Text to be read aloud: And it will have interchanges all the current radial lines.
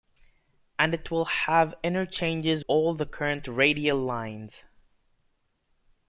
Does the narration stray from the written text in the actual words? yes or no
no